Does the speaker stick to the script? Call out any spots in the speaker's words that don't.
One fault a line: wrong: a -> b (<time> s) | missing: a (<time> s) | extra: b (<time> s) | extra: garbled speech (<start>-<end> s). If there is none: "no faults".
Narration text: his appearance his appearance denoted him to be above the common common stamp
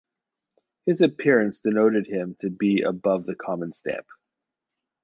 missing: his appearance (1.6 s)
missing: common (3.7 s)